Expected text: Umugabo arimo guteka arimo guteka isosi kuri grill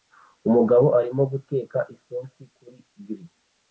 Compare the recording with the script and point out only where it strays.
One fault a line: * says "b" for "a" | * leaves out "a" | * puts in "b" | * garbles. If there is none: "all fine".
* leaves out "arimo guteka"